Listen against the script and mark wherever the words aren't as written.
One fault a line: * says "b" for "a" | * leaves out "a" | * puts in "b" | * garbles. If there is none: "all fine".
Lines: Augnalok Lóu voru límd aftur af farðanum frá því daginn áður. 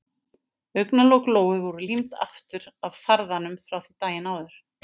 all fine